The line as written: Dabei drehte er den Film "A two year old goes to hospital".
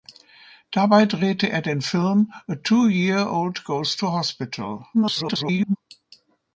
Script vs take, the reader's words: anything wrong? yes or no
yes